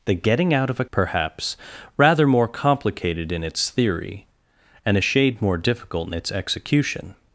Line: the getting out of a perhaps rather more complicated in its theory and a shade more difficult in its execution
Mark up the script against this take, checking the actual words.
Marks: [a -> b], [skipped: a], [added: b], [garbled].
the getting out of a perhaps rather more complicated in its theory and a shade more difficult in its execution